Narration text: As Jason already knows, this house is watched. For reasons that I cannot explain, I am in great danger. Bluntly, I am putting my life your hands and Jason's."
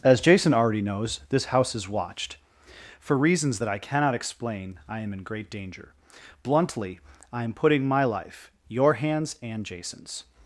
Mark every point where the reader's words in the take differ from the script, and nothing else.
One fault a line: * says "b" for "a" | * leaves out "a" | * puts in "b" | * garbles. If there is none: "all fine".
all fine